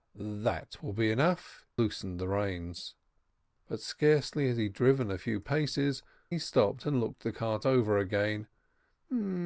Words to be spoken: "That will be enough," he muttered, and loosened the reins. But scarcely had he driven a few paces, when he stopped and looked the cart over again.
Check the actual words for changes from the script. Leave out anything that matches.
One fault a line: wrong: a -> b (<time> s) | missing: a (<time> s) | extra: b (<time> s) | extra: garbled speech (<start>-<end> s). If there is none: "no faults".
missing: he muttered and (1.7 s)
missing: when (6.0 s)